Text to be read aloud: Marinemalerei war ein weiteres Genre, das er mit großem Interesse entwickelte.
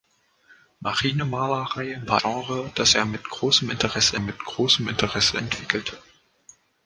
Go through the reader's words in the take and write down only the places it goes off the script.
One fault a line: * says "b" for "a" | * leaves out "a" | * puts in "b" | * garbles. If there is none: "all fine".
* leaves out "ein weiteres"
* puts in "mit großem Interesse"